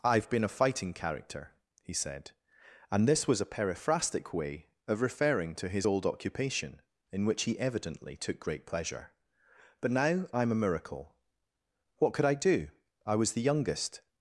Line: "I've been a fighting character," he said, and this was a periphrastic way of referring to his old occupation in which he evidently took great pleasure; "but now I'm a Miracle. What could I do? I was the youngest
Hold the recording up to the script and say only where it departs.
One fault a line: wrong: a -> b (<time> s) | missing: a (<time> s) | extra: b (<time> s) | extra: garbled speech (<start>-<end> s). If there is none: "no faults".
no faults